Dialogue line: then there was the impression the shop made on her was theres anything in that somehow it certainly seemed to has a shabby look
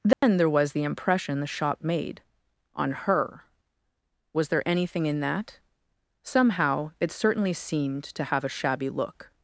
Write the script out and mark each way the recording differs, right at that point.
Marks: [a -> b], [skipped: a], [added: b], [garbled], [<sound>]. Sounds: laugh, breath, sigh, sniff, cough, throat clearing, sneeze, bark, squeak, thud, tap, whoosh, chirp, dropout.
then [dropout] there was the impression the shop made on her was [theres -> there] anything in that somehow it certainly seemed to [has -> have] a shabby look